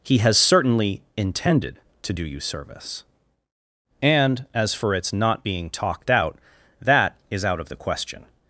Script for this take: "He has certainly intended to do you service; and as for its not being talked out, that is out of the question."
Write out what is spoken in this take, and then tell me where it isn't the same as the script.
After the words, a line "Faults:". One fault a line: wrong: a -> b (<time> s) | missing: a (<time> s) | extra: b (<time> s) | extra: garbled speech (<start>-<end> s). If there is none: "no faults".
"He has certainly intended to do you service; and as for its not being talked out, that is out of the question."
Faults:
no faults